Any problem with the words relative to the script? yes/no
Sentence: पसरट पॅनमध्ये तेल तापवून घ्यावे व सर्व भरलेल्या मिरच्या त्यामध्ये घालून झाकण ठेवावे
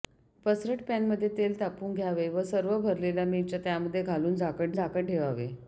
yes